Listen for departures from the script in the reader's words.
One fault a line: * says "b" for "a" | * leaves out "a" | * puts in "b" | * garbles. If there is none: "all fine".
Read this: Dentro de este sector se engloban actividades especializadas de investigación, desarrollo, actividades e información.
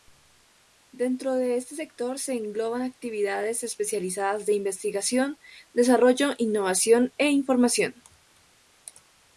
* says "innovación" for "actividades"